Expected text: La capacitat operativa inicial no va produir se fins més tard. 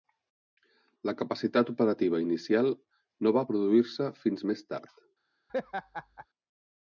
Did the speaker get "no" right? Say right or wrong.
right